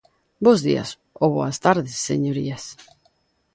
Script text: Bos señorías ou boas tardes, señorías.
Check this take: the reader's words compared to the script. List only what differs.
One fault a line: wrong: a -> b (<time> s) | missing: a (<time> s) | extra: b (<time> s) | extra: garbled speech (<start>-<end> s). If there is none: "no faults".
wrong: señorías -> días (0.7 s)